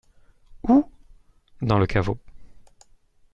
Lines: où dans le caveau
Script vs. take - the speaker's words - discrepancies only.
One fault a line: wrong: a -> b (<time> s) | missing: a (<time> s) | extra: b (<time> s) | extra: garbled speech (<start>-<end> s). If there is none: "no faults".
no faults